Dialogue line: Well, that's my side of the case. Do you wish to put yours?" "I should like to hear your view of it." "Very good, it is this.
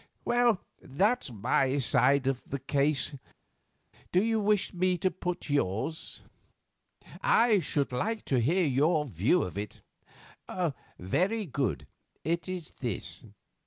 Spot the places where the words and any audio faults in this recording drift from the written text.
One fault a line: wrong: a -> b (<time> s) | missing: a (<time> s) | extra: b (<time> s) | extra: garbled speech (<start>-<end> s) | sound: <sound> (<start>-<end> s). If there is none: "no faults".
extra: me (4.7 s)